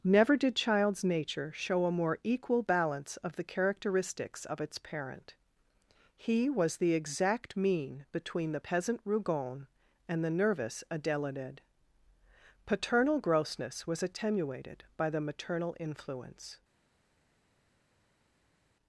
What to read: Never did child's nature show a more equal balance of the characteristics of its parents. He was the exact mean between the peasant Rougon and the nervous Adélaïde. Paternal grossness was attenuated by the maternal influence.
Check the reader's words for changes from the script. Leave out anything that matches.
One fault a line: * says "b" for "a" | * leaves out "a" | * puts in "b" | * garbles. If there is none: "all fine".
* says "parent" for "parents"